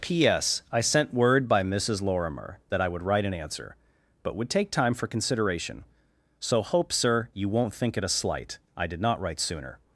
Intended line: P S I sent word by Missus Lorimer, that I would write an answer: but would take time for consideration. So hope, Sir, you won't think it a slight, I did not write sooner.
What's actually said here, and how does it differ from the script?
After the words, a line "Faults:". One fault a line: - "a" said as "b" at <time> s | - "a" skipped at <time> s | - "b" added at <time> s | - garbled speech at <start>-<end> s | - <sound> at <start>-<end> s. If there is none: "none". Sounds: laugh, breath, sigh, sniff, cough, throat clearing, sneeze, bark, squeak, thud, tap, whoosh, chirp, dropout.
P S I sent word by Missus Lorimer, that I would write an answer: but would take time for consideration. So hope, Sir, you won't think it a slight, I did not write sooner.
Faults:
none